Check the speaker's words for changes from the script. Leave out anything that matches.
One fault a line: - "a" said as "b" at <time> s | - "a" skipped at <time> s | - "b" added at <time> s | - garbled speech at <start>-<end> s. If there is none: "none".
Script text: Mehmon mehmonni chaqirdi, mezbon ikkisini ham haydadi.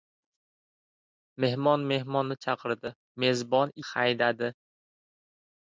- "ikkisini ham" skipped at 3.7 s